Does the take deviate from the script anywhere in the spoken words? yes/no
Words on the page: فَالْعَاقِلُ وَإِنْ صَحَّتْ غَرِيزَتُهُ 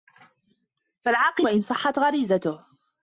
no